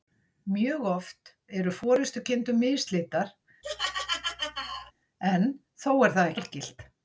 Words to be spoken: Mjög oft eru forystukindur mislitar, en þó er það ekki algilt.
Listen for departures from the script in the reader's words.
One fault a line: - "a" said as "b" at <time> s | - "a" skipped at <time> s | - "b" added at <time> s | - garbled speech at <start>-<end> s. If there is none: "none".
- "ekki" skipped at 6.3 s